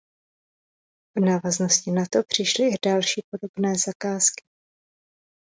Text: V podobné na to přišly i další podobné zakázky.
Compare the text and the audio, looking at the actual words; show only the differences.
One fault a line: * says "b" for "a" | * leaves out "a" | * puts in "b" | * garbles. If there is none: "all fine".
* says "návaznosti" for "podobné"